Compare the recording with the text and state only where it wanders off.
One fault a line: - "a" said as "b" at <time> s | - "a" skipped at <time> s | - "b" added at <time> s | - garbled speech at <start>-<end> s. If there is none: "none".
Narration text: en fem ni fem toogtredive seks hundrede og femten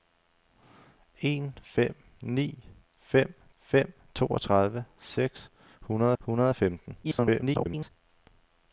- "fem" added at 3.6 s
- "hundrede" added at 6.2 s
- garbled speech at 7.0-7.9 s